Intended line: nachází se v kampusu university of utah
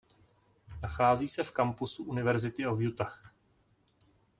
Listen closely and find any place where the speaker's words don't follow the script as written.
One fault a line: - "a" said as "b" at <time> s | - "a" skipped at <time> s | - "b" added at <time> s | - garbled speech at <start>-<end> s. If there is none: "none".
none